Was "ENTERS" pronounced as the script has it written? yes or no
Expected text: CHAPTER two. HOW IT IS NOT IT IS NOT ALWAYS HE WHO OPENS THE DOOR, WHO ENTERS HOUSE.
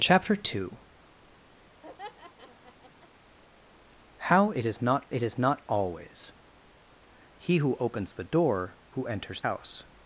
yes